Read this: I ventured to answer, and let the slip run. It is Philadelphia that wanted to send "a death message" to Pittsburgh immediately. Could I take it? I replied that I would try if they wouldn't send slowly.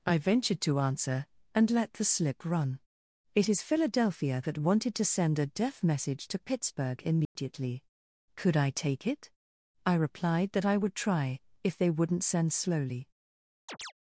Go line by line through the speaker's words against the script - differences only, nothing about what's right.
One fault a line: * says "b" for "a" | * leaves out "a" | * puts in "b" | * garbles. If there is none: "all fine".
all fine